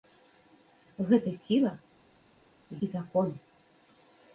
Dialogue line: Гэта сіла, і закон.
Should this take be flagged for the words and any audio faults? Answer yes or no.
no